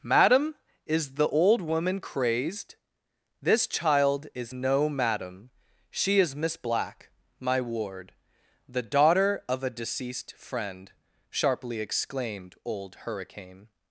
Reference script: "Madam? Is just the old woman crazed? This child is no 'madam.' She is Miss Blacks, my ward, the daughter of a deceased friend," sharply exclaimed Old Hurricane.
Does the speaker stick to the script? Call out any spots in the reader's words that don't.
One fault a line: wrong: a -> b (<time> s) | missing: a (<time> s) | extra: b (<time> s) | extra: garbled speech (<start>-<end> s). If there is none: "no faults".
missing: just (1.1 s)
wrong: Blacks -> Black (6.5 s)